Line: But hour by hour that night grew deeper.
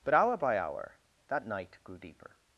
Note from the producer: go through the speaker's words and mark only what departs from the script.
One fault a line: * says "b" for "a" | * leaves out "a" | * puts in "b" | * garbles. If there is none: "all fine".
all fine